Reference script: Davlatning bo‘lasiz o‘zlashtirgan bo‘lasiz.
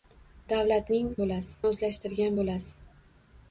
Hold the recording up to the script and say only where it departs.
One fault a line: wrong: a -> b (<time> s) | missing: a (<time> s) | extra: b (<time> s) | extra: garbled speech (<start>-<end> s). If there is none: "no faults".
no faults